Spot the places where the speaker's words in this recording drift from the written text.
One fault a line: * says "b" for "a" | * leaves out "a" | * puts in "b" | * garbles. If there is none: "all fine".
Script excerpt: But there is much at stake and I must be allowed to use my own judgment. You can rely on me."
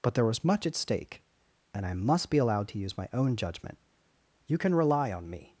* says "was" for "is"